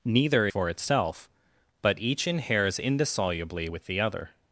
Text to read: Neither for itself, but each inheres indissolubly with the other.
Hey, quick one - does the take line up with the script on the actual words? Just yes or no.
yes